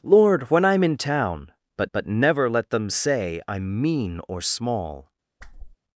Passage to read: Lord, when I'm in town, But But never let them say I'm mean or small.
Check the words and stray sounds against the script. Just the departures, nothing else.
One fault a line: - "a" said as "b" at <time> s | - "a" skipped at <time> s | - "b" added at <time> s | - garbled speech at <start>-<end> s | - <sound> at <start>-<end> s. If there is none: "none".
- whoosh at 5.4-5.8 s